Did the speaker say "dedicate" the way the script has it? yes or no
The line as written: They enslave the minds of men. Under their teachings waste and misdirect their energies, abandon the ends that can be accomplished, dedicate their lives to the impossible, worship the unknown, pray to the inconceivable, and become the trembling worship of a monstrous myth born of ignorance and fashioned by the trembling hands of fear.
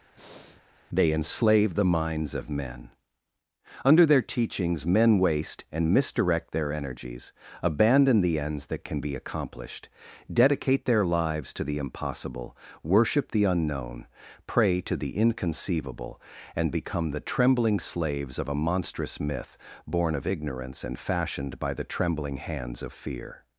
yes